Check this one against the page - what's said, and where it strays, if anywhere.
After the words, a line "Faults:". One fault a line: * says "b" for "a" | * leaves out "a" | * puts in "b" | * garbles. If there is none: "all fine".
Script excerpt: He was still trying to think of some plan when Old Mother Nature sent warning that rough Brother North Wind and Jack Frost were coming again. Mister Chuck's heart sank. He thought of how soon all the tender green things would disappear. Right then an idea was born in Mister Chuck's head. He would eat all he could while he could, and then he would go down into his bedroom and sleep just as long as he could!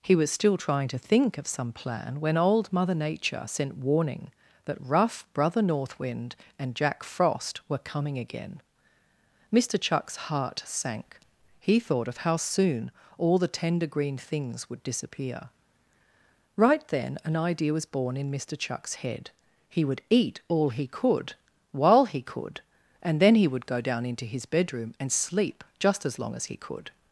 He was still trying to think of some plan when Old Mother Nature sent warning that rough Brother North Wind and Jack Frost were coming again. Mister Chuck's heart sank. He thought of how soon all the tender green things would disappear. Right then an idea was born in Mister Chuck's head. He would eat all he could while he could, and then he would go down into his bedroom and sleep just as long as he could!
Faults:
all fine